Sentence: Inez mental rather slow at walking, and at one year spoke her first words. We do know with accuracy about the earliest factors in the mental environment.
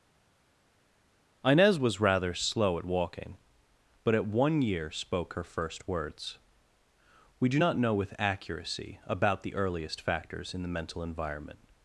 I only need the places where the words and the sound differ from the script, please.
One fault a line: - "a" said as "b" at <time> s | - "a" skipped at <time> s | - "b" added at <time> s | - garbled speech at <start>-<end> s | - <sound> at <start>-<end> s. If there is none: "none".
- "mental" said as "was" at 1.8 s
- "and" said as "but" at 4.0 s
- "not" added at 7.6 s